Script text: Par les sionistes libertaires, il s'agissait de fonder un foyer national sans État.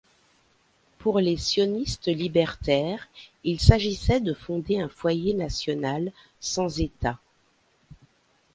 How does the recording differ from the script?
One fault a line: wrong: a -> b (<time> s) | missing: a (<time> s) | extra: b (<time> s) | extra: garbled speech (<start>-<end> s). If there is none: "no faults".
wrong: Par -> Pour (1.0 s)